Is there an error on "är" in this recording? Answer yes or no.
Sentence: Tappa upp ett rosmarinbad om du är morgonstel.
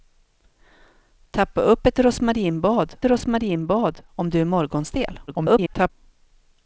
no